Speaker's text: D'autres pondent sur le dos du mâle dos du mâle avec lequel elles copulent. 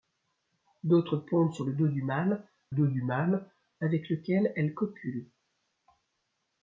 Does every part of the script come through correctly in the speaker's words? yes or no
yes